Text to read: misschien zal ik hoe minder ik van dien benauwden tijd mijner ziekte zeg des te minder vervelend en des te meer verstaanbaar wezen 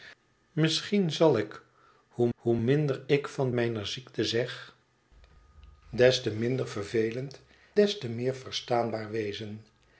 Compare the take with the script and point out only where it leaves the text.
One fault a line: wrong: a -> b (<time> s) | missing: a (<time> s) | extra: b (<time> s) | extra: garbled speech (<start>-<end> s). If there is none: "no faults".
extra: hoe (2.3 s)
missing: dien benauwden tijd (3.5 s)
missing: en (7.4 s)